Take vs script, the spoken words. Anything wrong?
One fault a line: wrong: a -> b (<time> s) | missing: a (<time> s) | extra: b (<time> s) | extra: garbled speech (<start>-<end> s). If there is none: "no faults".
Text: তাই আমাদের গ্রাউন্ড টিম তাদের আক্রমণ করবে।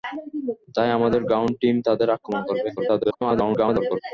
extra: garbled speech (2.8-4.0 s)